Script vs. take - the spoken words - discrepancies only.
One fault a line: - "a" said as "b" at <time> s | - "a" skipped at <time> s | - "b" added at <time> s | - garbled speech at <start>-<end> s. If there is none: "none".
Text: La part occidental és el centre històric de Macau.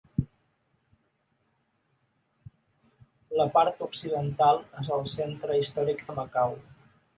none